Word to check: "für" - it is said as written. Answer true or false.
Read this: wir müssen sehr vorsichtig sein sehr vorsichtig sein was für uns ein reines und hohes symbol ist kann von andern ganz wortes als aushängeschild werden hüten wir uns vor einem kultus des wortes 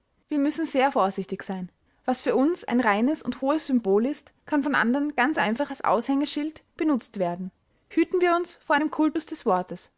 true